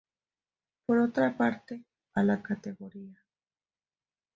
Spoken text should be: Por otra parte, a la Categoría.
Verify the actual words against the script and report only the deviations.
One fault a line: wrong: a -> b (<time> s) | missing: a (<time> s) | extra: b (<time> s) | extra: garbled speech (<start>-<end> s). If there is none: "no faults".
no faults